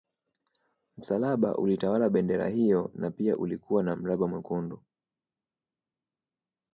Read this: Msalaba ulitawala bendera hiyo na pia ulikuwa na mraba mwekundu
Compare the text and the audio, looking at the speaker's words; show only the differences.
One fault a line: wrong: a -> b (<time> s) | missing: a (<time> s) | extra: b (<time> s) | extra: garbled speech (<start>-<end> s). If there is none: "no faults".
no faults